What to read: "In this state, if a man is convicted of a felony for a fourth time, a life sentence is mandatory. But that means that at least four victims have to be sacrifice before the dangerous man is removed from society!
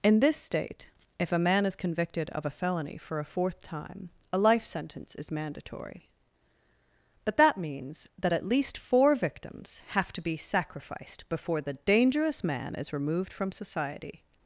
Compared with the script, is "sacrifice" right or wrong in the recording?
wrong